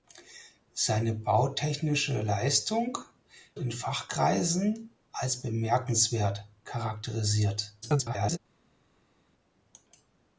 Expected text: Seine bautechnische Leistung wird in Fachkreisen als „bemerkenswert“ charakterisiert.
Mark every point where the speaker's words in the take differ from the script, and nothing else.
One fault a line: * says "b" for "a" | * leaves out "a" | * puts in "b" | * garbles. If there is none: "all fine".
* leaves out "wird"
* garbles